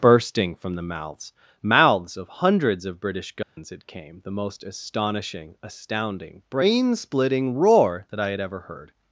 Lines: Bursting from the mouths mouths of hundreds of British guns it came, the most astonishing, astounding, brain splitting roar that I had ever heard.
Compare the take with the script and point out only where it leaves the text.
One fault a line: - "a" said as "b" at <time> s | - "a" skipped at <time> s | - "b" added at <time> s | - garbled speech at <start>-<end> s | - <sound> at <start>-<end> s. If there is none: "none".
- dropout at 3.4-3.6 s